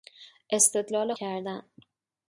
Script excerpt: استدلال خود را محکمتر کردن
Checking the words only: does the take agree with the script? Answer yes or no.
no